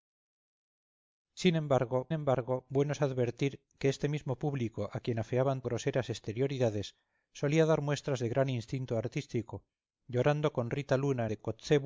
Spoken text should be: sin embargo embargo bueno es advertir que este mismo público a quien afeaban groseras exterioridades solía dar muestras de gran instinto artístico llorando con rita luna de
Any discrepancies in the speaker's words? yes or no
no